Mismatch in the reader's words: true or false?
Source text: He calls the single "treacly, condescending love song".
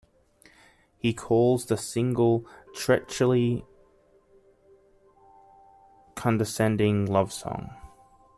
false